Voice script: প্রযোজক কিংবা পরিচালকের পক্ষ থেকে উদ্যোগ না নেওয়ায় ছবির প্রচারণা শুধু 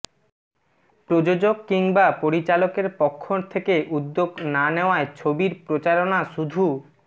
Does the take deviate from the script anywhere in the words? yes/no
no